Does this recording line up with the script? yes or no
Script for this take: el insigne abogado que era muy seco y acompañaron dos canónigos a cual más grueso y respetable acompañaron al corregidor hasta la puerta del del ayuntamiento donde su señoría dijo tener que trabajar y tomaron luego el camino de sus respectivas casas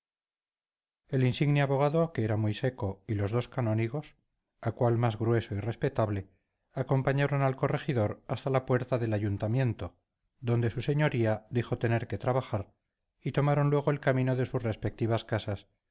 no